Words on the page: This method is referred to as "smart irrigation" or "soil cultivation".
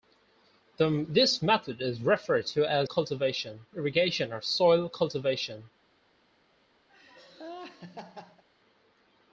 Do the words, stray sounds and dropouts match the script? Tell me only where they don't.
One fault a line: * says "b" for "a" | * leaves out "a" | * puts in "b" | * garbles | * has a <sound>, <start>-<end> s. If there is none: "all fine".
* says "cultivation" for "smart"
* has a laugh, 6.9-8.4 s